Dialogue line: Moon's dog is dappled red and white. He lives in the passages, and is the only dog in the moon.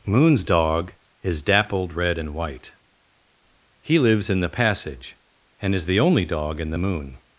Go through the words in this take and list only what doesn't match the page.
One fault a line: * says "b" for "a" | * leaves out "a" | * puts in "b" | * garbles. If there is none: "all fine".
* says "passage" for "passages"